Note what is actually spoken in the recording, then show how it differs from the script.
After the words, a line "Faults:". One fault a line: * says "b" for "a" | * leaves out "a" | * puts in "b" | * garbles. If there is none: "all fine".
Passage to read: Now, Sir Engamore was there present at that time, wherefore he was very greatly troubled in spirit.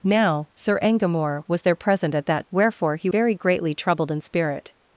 Now, Sir Engamore was there present at that wherefore he very greatly troubled in spirit.
Faults:
* leaves out "time"
* leaves out "was"